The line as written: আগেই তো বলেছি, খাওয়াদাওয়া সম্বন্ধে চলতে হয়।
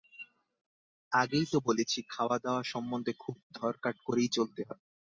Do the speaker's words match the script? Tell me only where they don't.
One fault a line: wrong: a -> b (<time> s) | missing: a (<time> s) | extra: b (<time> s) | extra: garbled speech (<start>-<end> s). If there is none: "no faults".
extra: খুব ধরকাট করেই (3.2 s)